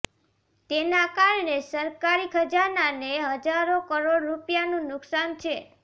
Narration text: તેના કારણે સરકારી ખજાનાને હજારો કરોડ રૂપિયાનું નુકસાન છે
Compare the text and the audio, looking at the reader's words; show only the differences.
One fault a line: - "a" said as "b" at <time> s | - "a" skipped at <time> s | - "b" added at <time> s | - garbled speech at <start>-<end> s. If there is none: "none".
none